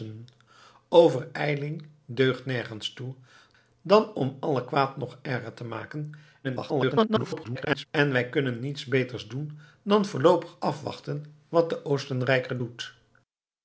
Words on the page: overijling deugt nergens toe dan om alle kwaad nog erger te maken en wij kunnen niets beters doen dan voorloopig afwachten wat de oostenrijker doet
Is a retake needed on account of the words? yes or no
yes